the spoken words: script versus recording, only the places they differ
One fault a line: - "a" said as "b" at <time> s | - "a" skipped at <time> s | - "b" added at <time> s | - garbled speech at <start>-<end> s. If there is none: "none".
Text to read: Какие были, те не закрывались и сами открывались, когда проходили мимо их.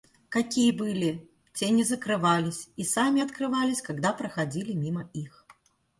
none